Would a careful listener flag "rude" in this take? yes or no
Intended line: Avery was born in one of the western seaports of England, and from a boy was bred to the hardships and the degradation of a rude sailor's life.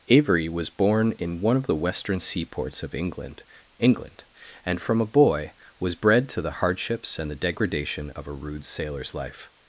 no